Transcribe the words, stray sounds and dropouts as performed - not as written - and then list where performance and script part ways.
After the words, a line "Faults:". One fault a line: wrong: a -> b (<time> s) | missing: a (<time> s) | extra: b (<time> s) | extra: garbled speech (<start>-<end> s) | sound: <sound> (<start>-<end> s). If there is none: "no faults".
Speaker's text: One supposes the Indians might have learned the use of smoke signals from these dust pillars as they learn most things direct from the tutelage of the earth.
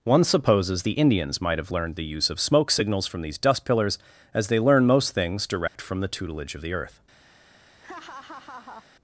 One supposes the Indians might have learned the use of smoke signals from these dust pillars as they learn most things direct from the tutelage of the earth.
Faults:
sound: dropout (5.7-5.7 s)
sound: laugh (7.8-8.9 s)